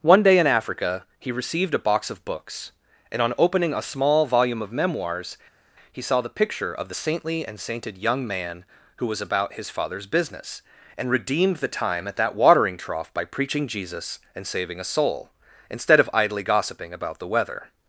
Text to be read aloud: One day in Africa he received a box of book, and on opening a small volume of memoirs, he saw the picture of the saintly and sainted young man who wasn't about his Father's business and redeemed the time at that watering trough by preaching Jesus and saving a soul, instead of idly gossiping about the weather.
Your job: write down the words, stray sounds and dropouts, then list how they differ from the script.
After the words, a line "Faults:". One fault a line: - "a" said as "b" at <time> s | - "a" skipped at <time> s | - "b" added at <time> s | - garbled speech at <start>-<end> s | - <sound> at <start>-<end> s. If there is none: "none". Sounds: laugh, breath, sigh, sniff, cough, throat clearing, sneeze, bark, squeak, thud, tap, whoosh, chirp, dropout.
One day in Africa he received a box of books, and on opening a small volume of memoirs, he saw the picture of the saintly and sainted young man who was about his Father's business and redeemed the time at that watering trough by preaching Jesus and saving a soul, instead of idly gossiping about the weather.
Faults:
- "book" said as "books" at 2.2 s
- "wasn't" said as "was" at 9.0 s